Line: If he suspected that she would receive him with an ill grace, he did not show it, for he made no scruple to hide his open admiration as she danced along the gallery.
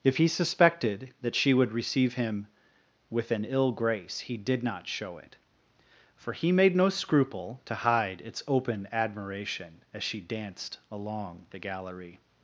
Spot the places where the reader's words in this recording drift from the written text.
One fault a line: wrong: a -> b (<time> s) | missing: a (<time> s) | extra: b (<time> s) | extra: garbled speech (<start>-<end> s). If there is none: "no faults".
wrong: his -> its (8.2 s)